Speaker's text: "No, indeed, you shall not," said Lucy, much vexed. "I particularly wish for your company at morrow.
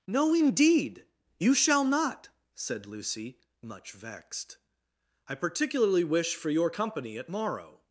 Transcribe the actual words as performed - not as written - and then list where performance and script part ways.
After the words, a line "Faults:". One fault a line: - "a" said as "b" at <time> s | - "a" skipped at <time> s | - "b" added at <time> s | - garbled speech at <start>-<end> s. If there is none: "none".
"No, indeed, you shall not," said Lucy, much vexed. "I particularly wish for your company at morrow.
Faults:
none